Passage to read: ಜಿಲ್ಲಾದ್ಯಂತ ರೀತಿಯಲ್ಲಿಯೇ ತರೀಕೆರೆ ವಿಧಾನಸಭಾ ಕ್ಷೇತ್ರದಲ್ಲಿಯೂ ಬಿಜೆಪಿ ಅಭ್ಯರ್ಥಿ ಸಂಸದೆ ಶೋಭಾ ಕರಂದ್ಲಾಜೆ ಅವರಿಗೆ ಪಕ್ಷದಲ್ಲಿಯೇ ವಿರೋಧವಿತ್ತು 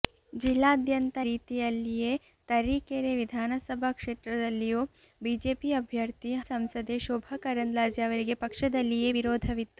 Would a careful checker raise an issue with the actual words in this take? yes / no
no